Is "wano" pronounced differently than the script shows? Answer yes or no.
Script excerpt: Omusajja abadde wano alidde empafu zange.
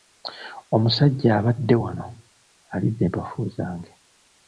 no